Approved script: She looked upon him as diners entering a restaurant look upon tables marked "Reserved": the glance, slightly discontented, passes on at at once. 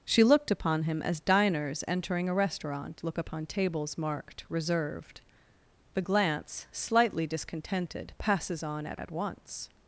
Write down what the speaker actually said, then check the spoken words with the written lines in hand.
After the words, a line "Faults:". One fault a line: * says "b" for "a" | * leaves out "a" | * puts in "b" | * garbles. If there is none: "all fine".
She looked upon him as diners entering a restaurant look upon tables marked "Reserved": the glance, slightly discontented, passes on at at once.
Faults:
all fine